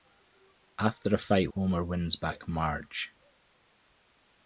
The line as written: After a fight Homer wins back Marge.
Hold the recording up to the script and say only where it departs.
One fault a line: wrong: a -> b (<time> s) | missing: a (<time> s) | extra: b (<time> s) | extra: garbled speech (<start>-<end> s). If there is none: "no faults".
no faults